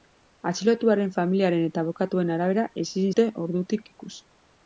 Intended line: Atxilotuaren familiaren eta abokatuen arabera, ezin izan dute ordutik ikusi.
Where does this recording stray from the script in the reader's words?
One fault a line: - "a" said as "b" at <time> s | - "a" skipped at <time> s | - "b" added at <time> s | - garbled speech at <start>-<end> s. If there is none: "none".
- "izan" skipped at 3.1 s